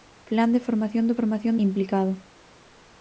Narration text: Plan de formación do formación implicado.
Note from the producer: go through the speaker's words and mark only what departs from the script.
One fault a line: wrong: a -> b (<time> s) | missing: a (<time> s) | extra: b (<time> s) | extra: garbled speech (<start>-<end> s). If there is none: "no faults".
no faults